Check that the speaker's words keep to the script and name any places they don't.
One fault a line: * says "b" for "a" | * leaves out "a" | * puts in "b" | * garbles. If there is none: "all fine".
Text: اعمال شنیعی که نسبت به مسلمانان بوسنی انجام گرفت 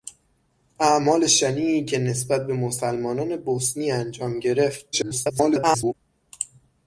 * garbles